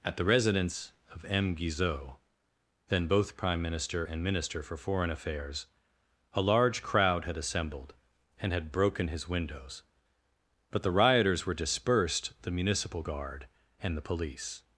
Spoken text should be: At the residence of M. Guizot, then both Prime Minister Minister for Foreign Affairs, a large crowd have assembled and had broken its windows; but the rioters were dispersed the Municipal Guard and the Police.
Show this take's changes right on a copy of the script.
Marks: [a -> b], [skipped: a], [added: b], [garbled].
At the residence of M. Guizot, then both Prime Minister [added: and] Minister for Foreign Affairs, a large crowd [have -> had] assembled and had broken [its -> his] windows; but the rioters were dispersed the Municipal Guard and the Police.